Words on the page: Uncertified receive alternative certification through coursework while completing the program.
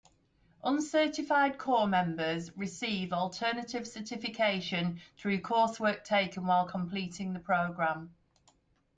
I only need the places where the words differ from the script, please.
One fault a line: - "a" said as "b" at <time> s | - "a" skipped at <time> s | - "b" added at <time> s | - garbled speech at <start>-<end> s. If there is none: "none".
- "corps members" added at 1.6 s
- "taken" added at 6.0 s